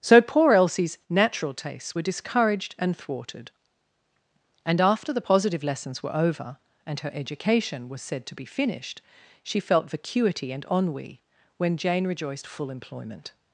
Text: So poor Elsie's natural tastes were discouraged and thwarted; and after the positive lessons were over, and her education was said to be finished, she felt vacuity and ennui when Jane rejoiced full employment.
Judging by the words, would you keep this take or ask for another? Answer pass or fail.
pass